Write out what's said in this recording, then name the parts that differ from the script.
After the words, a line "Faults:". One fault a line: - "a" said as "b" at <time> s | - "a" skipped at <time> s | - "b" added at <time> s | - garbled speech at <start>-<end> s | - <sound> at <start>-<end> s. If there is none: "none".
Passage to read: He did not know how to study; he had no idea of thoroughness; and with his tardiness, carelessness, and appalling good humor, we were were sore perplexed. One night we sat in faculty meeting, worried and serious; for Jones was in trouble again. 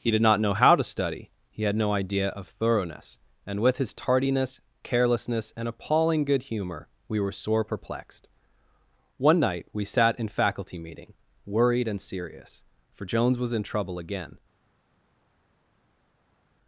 He did not know how to study; he had no idea of thoroughness; and with his tardiness, carelessness, and appalling good humor, we were sore perplexed. One night we sat in faculty meeting, worried and serious; for Jones was in trouble again.
Faults:
- "were" skipped at 7.3 s